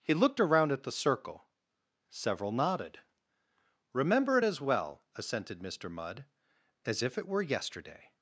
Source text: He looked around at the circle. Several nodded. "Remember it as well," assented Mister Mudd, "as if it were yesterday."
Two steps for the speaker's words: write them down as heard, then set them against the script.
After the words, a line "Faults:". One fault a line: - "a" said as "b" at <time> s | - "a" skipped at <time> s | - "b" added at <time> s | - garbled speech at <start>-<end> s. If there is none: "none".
He looked around at the circle. Several nodded. "Remember it as well," assented Mister Mudd, "as if it were yesterday."
Faults:
none